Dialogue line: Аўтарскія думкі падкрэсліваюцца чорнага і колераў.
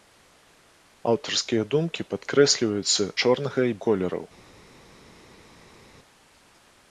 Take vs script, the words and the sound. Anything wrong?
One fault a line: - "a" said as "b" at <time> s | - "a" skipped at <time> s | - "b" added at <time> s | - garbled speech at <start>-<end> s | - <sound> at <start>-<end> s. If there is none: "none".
none